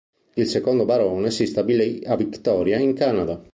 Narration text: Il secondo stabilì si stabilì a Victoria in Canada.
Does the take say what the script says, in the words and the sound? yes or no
no